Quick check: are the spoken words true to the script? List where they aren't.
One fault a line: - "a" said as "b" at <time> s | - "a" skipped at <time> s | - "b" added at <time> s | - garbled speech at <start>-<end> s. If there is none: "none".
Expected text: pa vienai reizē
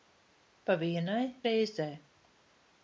none